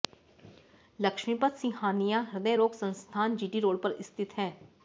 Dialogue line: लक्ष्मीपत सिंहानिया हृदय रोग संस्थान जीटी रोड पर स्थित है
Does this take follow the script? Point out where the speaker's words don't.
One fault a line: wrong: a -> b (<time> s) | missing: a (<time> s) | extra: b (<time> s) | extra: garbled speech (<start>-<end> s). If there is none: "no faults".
no faults